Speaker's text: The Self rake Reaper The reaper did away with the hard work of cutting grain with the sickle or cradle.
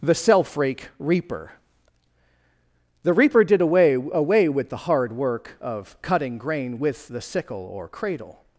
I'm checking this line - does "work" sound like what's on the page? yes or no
yes